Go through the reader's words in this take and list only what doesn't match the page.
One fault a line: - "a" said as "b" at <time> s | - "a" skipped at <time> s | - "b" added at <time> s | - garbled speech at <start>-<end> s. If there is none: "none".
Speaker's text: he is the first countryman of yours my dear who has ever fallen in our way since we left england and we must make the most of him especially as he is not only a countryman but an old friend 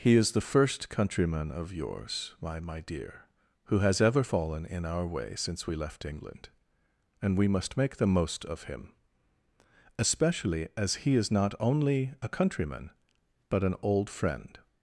- "my" added at 2.6 s